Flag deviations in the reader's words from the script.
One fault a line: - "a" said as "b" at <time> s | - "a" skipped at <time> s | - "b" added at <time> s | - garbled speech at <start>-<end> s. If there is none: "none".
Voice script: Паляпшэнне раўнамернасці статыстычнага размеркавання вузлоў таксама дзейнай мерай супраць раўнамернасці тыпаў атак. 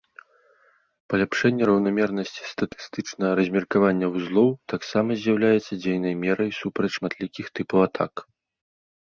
- "з'яўляецца" added at 5.3 s
- "раўнамернасці" said as "шматлікіх" at 7.0 s